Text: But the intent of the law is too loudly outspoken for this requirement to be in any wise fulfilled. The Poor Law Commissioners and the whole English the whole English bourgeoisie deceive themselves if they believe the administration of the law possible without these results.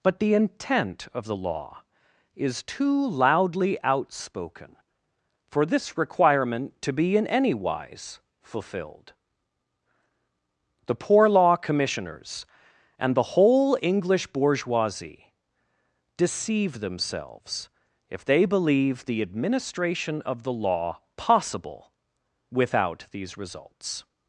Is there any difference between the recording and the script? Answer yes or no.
yes